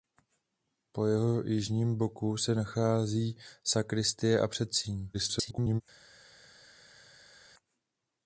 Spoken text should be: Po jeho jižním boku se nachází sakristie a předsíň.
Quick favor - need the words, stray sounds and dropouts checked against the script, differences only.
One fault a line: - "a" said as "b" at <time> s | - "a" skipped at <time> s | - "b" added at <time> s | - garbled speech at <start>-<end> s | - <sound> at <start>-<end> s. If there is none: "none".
- garbled speech at 5.1-5.8 s